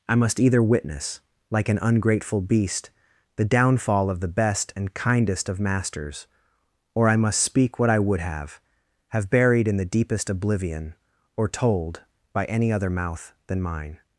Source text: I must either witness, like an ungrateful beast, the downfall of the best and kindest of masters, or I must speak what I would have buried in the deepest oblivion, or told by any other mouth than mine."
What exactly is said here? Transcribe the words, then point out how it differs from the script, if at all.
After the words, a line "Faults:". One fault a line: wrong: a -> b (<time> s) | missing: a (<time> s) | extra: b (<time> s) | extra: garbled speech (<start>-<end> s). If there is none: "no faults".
I must either witness, like an ungrateful beast, the downfall of the best and kindest of masters, or I must speak what I would have have buried in the deepest oblivion, or told by any other mouth than mine."
Faults:
extra: have (9.1 s)